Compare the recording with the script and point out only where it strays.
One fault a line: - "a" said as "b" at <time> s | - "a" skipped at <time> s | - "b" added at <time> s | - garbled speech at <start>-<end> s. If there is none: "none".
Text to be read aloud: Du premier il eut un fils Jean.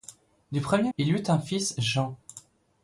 none